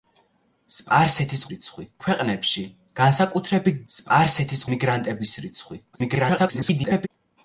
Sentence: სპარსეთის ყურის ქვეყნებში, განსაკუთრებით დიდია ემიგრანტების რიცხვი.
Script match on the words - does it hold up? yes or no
no